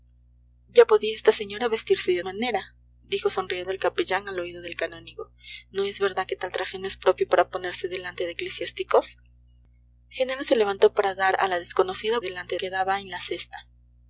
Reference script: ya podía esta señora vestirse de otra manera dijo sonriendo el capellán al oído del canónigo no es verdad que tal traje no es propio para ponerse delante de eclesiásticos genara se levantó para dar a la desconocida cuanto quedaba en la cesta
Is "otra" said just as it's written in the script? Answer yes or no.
no